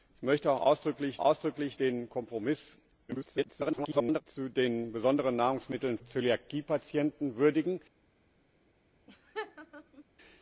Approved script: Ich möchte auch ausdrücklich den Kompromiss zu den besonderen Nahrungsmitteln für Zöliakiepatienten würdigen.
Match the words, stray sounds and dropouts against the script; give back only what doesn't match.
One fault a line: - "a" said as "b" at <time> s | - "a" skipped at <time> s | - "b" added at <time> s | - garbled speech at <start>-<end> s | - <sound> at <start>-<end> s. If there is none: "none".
- "ausdrücklich" added at 1.2 s
- garbled speech at 3.1-4.2 s
- "für" skipped at 6.0 s
- laugh at 9.1-10.0 s